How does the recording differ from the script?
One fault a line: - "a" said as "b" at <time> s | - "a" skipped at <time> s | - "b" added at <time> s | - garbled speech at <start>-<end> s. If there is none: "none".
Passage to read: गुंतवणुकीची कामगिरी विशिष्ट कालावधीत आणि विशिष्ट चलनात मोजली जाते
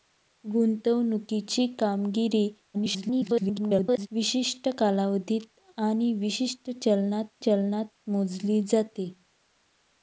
- garbled speech at 2.7-4.1 s
- "चलनात" added at 7.4 s